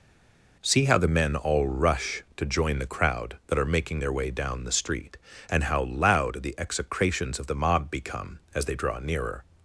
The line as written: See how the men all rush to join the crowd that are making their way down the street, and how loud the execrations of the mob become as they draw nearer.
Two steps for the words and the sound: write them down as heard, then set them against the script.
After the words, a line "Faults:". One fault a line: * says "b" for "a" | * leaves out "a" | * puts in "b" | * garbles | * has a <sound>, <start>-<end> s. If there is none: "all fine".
See how the men all rush to join the crowd that are making their way down the street, and how loud the execrations of the mob become as they draw nearer.
Faults:
all fine